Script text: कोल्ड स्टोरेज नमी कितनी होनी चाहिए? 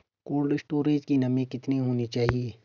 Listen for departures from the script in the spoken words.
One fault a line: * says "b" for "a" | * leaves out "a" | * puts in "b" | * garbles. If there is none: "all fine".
* puts in "की"